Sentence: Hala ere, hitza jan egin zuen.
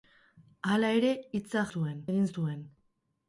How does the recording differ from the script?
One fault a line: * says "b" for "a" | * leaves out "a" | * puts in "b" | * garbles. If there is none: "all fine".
* says "zuen" for "jan"